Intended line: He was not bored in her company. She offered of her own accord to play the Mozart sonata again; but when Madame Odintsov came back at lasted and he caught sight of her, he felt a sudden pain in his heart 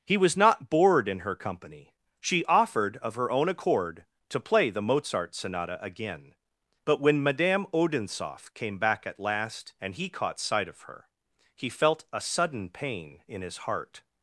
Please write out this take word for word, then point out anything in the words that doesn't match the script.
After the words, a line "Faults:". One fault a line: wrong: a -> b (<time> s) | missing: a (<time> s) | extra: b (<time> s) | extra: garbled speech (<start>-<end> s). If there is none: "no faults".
He was not bored in her company. She offered of her own accord to play the Mozart sonata again; but when Madame Odintsov came back at last and he caught sight of her, he felt a sudden pain in his heart
Faults:
wrong: lasted -> last (9.2 s)